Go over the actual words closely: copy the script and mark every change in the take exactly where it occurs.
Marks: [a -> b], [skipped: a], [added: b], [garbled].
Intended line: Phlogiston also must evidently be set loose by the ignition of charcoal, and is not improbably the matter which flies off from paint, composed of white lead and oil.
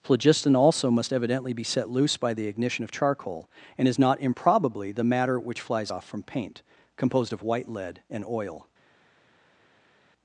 Phlogiston also must evidently be set loose by the ignition of charcoal, and is not improbably the matter which flies off from paint, composed of white lead and oil.